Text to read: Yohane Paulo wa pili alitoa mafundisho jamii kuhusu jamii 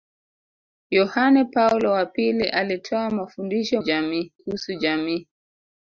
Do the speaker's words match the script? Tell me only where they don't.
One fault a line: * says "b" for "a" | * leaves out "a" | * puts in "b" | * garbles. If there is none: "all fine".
all fine